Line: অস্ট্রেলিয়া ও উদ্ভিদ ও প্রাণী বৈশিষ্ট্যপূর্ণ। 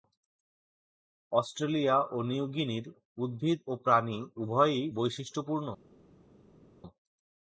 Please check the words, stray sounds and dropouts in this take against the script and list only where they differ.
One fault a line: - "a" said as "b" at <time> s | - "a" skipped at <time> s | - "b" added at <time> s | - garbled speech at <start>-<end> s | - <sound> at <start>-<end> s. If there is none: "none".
- "নিউ গিনির" added at 2.3 s
- "উভয়ই" added at 4.4 s